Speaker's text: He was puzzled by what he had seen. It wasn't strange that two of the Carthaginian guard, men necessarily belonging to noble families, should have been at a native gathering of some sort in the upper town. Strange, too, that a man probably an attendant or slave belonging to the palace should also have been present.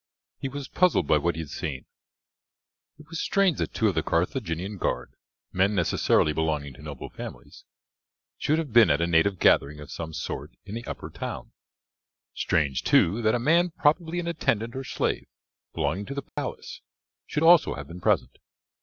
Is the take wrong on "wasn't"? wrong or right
wrong